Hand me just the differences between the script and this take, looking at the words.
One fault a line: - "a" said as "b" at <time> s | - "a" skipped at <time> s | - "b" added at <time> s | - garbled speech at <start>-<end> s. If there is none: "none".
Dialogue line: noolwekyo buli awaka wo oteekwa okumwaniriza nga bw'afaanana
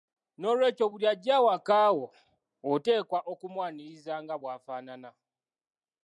- "ajja" added at 1.1 s